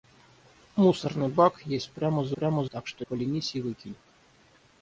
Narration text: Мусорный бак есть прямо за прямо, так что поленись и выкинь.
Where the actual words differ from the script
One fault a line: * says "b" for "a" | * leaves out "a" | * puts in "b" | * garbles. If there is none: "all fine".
all fine